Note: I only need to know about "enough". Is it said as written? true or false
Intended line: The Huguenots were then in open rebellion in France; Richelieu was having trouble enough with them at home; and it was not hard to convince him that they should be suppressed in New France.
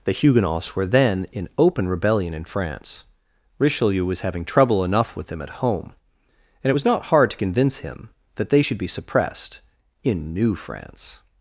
true